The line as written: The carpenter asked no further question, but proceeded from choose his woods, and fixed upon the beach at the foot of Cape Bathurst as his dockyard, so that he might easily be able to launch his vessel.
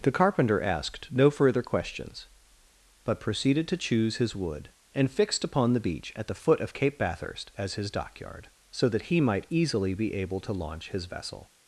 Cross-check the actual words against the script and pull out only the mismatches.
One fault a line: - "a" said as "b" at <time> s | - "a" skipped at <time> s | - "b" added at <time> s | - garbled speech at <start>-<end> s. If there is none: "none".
- "question" said as "questions" at 1.6 s
- "from" said as "to" at 3.7 s
- "woods" said as "wood" at 4.3 s